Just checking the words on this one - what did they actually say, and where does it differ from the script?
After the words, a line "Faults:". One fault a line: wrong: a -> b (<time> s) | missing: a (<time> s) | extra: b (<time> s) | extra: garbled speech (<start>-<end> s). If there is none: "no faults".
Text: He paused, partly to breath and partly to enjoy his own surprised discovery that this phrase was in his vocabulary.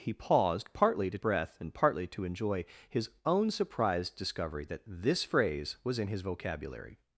He paused, partly to breath and partly to enjoy his own surprised discovery that this phrase was in his vocabulary.
Faults:
no faults